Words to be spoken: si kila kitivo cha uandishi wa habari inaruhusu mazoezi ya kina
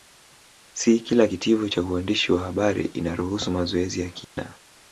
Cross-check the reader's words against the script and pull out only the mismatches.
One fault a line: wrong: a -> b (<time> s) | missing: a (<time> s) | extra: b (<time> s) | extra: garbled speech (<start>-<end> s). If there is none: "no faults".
no faults